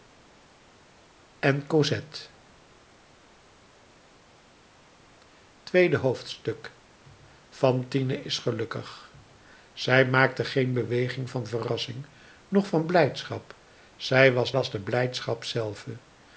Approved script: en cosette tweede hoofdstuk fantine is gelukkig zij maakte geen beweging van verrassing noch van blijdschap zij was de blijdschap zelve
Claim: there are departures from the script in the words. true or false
true